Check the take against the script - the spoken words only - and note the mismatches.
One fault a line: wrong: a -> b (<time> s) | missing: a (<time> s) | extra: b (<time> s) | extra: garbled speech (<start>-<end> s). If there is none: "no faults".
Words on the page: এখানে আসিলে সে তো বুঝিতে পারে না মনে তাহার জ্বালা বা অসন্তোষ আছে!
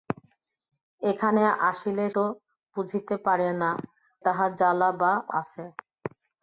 missing: সে (2.0 s)
missing: মনে (3.7 s)
missing: অসন্তোষ (5.1 s)